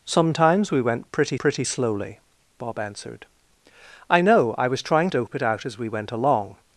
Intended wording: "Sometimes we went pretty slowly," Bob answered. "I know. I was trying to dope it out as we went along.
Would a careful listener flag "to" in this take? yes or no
yes